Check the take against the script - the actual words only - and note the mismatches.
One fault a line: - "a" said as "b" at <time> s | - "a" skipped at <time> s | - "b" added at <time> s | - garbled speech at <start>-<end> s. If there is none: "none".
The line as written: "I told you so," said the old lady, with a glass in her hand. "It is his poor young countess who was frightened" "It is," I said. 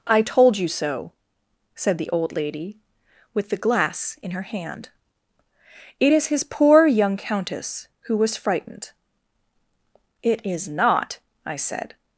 - "a" said as "the" at 3.5 s
- "not" added at 10.7 s